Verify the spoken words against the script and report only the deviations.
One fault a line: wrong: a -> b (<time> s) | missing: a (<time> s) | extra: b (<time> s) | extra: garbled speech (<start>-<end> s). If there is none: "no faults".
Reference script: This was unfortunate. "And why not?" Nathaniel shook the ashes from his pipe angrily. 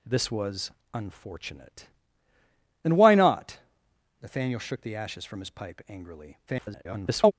extra: garbled speech (6.5-7.3 s)